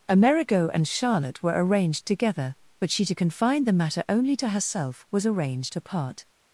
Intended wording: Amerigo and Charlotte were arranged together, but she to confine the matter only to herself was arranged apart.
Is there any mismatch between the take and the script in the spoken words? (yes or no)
no